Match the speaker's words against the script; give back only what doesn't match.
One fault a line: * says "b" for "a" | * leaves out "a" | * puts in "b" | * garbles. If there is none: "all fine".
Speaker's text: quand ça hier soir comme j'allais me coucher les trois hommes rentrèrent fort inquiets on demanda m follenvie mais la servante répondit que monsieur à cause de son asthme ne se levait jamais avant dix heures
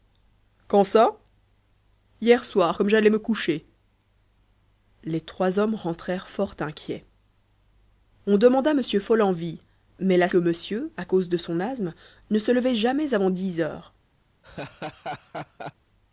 * leaves out "servante répondit"